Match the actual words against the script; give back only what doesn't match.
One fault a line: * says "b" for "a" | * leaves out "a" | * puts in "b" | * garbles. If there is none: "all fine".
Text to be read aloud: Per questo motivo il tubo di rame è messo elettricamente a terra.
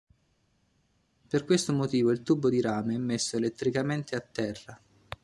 all fine